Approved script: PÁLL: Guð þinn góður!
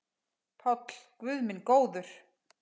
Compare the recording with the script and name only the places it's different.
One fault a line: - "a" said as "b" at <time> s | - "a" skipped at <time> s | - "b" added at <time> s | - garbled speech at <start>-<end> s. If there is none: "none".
- "þinn" said as "minn" at 1.5 s